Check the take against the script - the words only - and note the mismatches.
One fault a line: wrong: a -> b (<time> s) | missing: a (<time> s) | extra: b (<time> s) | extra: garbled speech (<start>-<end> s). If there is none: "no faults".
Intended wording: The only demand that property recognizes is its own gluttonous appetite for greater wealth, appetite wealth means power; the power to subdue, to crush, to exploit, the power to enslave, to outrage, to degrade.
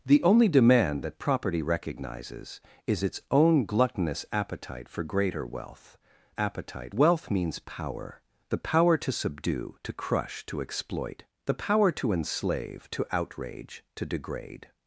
no faults